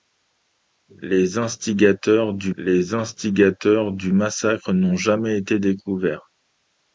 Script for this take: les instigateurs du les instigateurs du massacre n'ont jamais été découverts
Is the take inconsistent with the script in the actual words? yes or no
no